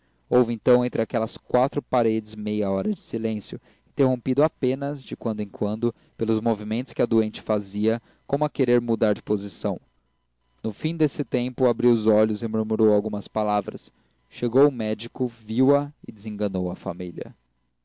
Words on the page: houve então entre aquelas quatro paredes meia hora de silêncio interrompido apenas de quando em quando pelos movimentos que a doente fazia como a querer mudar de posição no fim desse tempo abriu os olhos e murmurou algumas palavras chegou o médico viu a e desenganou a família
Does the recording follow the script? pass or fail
pass